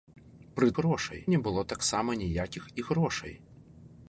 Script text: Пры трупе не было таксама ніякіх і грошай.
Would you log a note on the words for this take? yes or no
yes